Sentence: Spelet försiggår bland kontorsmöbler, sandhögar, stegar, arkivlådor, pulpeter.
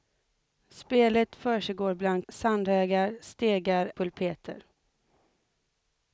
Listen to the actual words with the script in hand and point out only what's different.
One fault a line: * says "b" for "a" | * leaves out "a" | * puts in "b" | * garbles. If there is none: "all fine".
* leaves out "kontorsmöbler"
* leaves out "arkivlådor"